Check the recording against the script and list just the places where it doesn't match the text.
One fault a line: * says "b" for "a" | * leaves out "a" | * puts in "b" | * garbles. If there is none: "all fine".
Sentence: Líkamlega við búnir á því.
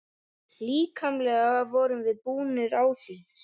* puts in "vorum"